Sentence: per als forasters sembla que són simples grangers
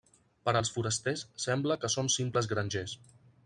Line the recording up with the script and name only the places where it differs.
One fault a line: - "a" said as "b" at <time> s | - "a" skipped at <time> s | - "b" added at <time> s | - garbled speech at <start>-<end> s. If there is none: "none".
none